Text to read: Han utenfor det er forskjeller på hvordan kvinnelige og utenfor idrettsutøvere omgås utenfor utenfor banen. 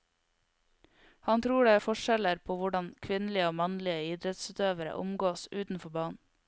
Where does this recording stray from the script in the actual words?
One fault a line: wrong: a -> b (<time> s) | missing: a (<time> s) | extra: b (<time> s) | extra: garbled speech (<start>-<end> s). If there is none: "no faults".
wrong: utenfor -> tror (1.4 s)
wrong: utenfor -> mannlige (3.6 s)
missing: utenfor (5.9 s)